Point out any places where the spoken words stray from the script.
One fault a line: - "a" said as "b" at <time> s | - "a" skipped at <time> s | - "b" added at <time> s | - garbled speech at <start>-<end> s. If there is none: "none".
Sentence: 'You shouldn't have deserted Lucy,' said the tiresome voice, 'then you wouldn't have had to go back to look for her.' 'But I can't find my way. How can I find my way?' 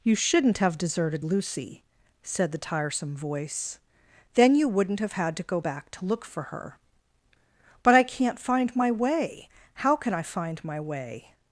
none